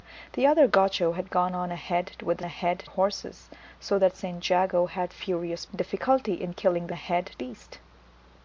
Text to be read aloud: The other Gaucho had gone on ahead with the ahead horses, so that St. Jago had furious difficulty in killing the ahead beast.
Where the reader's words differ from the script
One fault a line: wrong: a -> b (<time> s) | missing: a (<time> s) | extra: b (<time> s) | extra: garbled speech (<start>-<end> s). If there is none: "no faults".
no faults